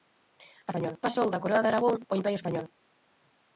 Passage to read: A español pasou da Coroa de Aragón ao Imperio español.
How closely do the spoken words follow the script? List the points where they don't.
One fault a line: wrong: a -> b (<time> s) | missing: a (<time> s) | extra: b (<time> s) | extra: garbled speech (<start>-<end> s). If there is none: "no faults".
no faults